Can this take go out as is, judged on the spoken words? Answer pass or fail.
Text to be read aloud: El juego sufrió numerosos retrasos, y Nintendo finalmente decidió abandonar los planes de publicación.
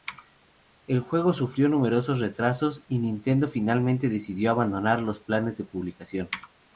pass